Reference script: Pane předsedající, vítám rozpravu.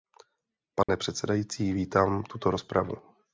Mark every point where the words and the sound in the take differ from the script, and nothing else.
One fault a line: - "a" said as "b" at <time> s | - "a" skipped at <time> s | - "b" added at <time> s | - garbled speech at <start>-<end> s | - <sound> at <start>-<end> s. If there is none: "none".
- dropout at 0.8-0.9 s
- "tuto" added at 2.2 s